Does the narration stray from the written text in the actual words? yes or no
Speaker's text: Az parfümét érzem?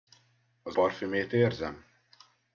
no